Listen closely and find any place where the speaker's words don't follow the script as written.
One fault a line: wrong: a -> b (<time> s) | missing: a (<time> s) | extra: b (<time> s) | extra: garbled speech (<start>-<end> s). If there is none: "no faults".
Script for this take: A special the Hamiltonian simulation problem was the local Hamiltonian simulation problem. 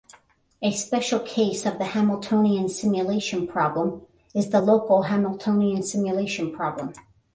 extra: case of (1.2 s)
wrong: was -> is (4.3 s)